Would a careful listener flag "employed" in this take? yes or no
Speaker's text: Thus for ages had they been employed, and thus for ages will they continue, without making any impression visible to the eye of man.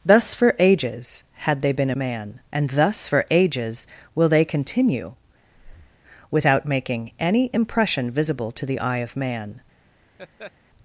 yes